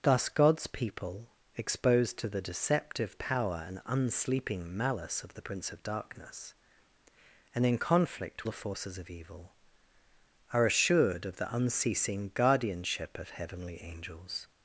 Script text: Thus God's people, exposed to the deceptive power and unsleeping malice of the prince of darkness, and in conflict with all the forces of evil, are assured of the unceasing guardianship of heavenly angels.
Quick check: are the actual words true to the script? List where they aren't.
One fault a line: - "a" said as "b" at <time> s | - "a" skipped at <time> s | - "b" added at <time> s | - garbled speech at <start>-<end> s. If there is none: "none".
- "with all" skipped at 8.5 s